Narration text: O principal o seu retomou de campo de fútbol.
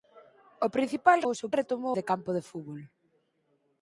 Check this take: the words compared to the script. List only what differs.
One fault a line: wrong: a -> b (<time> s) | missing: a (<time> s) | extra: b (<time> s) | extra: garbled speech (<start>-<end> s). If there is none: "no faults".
no faults